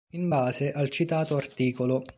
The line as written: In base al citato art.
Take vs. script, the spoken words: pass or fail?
pass